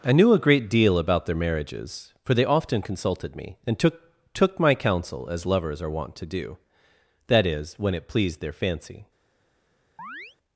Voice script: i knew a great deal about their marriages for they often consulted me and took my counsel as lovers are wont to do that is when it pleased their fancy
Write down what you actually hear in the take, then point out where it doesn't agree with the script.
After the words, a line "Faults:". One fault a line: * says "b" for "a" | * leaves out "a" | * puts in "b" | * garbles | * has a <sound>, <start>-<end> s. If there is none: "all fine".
i knew a great deal about their marriages for they often consulted me and took took my counsel as lovers are wont to do that is when it pleased their fancy
Faults:
* puts in "took"
* has a chirp, 10.0-10.4 s